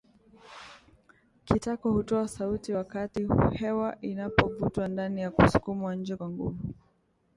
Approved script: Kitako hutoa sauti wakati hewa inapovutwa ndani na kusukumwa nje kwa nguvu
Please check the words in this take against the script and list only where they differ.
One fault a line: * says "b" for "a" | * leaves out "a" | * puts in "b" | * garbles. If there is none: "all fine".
all fine